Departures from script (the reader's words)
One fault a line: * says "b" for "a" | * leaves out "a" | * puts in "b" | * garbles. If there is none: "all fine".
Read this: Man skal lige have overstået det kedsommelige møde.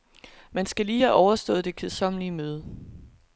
all fine